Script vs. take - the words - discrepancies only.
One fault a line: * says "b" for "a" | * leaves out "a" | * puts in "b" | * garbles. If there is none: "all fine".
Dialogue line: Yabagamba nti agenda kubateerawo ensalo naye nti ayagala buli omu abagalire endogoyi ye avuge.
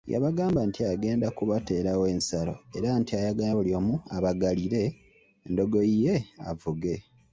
* says "era" for "naye"